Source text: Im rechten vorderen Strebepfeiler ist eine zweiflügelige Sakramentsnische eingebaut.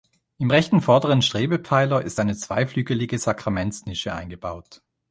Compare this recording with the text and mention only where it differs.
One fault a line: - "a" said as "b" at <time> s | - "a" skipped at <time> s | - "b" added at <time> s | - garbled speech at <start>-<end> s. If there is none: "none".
none